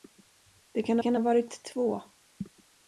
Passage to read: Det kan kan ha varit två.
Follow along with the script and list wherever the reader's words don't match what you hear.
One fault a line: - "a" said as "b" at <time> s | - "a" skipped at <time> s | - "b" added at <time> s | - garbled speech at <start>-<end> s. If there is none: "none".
none